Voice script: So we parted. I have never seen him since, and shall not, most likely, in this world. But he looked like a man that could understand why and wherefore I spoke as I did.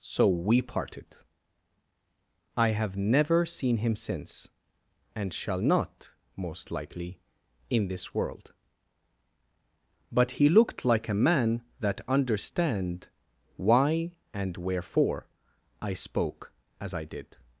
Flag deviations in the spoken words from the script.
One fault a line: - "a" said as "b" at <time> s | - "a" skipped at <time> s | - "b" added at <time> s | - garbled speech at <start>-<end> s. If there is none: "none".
- "could" skipped at 12.0 s